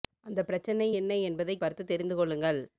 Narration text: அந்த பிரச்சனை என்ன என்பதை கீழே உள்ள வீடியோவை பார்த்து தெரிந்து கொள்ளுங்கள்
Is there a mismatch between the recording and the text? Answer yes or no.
yes